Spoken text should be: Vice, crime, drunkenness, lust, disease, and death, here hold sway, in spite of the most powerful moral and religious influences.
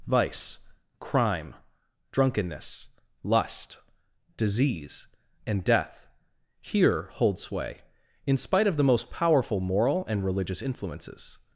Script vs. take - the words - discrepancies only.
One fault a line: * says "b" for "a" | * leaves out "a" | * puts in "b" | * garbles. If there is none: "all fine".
all fine